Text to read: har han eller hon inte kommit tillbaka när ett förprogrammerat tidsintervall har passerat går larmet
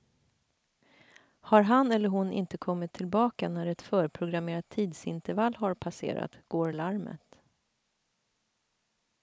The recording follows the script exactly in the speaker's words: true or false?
true